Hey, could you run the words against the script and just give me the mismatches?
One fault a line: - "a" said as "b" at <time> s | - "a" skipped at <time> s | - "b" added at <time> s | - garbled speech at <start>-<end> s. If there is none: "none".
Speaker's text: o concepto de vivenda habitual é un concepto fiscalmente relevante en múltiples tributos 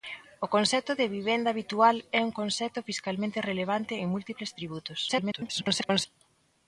- garbled speech at 5.1-6.1 s